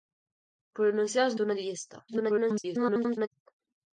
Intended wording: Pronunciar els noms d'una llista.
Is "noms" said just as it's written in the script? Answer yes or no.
no